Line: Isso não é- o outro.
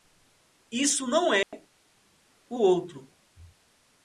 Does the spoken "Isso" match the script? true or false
true